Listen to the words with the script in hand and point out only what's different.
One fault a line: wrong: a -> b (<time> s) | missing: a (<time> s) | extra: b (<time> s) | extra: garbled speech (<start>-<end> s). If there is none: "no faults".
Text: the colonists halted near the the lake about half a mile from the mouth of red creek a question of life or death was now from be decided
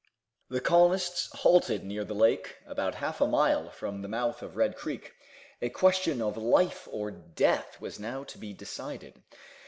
missing: the (2.1 s)
wrong: from -> to (8.3 s)